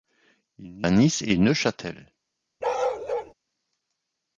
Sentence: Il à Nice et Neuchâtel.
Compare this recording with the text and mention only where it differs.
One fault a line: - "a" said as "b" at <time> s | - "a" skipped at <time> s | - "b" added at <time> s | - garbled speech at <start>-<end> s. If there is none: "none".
none